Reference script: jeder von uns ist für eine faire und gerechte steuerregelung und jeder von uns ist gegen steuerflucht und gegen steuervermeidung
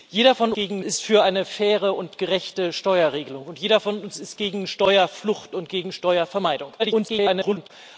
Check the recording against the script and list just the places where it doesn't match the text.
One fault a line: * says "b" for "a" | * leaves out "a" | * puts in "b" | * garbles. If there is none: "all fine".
* says "gegen" for "uns"
* garbles